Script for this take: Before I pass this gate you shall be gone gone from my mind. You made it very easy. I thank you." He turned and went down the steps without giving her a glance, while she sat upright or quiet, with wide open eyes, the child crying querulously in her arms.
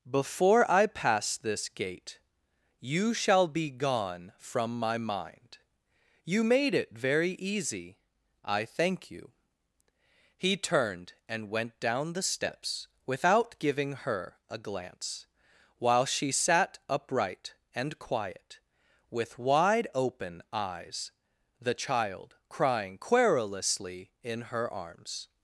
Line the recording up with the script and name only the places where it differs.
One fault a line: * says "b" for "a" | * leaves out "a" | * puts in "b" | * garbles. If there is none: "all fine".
* leaves out "gone"
* says "and" for "or"